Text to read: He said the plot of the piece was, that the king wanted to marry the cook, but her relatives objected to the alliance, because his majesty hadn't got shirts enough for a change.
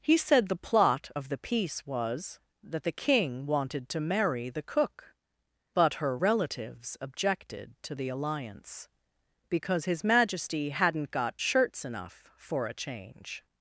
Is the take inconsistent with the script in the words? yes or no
no